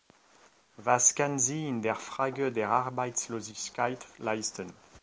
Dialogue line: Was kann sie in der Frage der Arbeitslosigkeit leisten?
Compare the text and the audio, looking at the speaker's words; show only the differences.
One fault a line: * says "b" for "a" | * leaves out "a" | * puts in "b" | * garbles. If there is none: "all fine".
all fine